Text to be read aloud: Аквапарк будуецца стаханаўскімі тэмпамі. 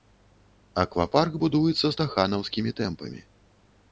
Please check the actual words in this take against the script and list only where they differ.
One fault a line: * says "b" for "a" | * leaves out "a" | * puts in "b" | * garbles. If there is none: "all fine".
all fine